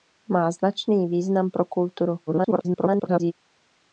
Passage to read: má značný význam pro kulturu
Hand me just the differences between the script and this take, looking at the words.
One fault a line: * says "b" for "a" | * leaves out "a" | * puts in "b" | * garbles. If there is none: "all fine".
* garbles